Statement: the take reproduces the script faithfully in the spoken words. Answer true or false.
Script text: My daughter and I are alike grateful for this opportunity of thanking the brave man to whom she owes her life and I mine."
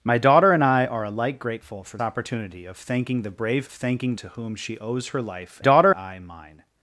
false